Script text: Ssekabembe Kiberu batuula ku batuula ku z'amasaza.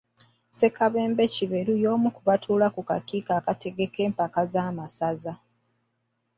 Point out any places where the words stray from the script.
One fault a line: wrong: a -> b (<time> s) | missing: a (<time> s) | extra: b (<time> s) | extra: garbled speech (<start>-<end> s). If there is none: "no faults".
wrong: batuula -> y'omu (1.8 s)
extra: kakiiko akategeka empaka (2.9 s)